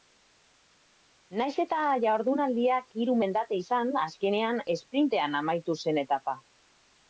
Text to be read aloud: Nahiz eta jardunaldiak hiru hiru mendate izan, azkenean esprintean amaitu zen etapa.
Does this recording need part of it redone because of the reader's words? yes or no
yes